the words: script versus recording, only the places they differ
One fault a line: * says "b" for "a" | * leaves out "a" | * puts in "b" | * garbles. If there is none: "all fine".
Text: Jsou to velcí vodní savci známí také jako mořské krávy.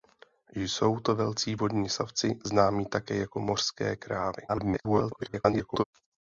* garbles